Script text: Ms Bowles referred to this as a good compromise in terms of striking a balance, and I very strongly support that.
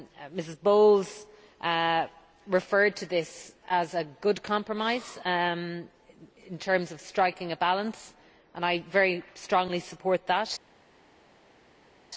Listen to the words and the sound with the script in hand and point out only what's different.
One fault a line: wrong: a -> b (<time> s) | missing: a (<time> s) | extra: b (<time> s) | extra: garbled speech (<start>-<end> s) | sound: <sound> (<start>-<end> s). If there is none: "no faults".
no faults